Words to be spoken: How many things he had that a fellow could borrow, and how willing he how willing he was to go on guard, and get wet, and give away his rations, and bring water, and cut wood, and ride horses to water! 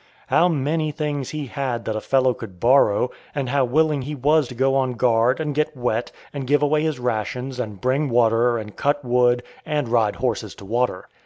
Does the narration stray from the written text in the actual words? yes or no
yes